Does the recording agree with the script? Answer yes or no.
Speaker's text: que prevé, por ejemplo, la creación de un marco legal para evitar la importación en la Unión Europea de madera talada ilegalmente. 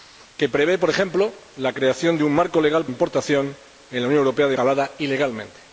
no